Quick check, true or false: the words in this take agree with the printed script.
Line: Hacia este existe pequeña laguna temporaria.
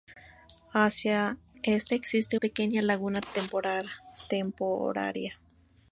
true